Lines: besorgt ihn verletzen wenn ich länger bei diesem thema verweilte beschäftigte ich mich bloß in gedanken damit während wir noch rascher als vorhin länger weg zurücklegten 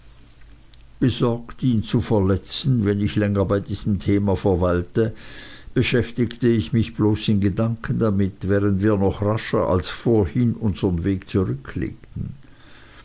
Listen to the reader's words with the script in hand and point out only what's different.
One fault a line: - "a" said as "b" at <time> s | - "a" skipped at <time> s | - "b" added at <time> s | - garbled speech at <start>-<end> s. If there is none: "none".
- "zu" added at 1.8 s
- "länger" said as "unsern" at 10.6 s